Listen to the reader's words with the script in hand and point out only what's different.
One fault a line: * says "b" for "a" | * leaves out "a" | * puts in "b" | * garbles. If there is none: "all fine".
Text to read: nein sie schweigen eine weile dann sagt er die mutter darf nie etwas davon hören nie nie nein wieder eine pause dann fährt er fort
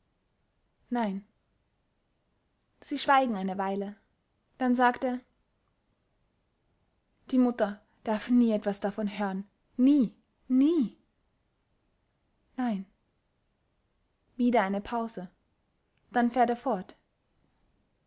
all fine